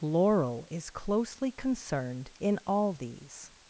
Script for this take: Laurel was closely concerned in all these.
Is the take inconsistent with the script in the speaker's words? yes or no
yes